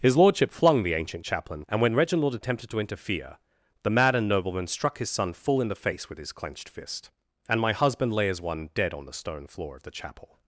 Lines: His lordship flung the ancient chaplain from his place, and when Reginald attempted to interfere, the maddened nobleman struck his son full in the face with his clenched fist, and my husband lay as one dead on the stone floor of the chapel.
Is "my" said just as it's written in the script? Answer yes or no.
yes